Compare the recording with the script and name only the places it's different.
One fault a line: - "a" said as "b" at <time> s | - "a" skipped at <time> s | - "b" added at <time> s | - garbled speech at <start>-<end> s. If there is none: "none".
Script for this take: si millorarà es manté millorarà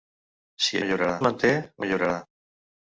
none